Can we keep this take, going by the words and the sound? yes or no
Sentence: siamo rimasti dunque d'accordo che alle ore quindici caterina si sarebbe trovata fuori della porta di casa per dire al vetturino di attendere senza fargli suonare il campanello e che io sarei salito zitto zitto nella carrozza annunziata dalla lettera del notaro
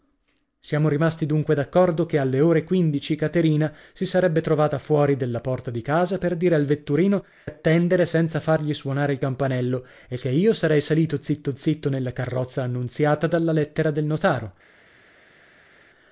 no